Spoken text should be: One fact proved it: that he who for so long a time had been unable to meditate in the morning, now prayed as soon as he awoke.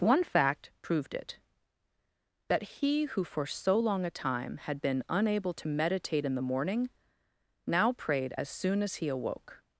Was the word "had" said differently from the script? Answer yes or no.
no